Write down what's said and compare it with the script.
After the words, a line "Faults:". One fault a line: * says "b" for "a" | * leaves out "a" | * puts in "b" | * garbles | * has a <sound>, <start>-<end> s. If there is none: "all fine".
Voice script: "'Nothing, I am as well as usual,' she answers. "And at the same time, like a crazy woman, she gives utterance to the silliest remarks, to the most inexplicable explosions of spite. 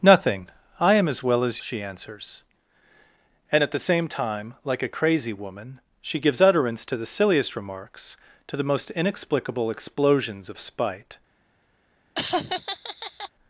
"'Nothing, I am as well as,' she answers. "And at the same time, like a crazy woman, she gives utterance to the silliest remarks, to the most inexplicable explosions of spite.
Faults:
* leaves out "usual"
* has a laugh, 12.1-13.3 s